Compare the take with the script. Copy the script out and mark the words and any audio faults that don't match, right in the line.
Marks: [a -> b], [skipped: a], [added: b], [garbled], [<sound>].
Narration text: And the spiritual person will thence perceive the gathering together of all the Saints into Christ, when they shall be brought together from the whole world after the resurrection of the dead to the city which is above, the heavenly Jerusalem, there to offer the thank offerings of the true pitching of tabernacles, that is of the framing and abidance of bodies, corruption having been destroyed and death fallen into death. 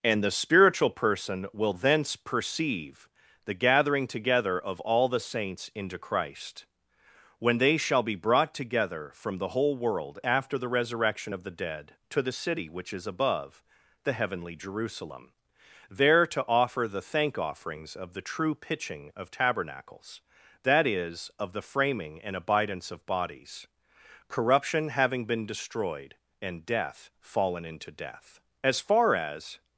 And the spiritual person will thence perceive the gathering together of all the Saints into Christ, when they shall be brought together from the whole world after the resurrection of the dead to the city which is above, the heavenly Jerusalem, there to offer the thank offerings of the true pitching of tabernacles, that is of the framing and abidance of bodies, corruption having been destroyed and death fallen into death. [added: As far as]